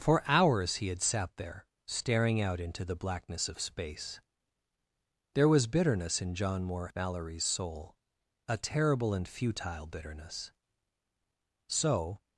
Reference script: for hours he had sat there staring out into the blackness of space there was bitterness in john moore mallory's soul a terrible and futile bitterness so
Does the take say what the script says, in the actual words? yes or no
yes